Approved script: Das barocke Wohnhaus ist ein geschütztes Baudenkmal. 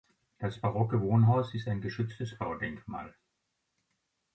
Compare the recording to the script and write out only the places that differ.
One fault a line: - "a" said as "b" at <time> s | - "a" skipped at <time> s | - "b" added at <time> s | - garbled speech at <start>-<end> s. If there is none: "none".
none